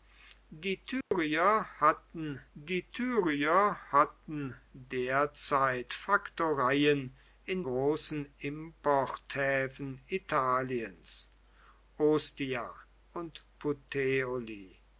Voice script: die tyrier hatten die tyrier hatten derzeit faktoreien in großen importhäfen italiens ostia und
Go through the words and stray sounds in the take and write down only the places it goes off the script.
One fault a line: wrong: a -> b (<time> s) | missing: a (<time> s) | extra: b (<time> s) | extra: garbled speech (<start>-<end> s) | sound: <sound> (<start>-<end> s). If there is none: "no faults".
sound: dropout (1.0-1.1 s)